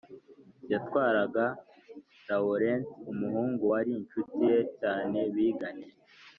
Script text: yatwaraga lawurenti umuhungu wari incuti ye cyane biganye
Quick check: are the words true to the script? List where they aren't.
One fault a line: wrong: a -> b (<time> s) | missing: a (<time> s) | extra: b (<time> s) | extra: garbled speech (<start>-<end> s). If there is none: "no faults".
no faults